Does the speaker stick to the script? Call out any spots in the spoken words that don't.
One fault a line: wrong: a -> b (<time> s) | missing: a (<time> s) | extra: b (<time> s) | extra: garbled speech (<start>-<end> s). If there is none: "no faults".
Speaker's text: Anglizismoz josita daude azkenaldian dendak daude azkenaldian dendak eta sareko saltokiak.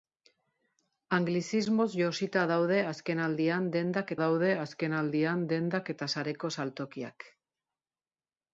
no faults